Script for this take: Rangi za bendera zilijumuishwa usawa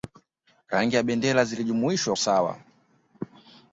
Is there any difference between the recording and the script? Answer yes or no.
no